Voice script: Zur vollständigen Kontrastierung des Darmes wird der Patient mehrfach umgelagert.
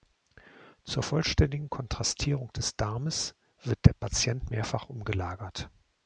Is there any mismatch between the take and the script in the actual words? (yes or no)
no